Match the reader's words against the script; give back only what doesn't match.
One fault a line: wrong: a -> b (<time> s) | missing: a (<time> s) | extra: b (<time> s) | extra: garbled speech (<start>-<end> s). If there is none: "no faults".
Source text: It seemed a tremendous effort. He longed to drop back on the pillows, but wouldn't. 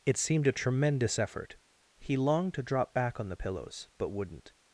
no faults